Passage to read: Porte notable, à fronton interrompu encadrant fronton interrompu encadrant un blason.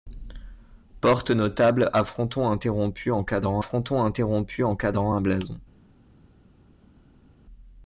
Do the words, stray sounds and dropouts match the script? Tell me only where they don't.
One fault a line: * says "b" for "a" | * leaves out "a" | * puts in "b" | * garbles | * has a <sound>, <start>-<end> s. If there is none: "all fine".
all fine